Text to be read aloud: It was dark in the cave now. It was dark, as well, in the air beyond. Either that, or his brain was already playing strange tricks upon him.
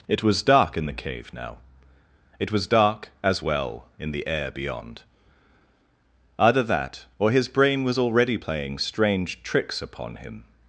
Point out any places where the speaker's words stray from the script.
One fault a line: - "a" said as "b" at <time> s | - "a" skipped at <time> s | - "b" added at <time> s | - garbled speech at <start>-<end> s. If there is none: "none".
none